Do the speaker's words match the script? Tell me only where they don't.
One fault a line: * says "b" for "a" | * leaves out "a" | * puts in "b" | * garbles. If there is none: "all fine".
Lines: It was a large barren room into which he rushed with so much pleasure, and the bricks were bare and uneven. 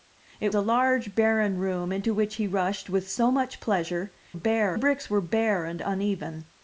* leaves out "was"
* says "bare" for "and"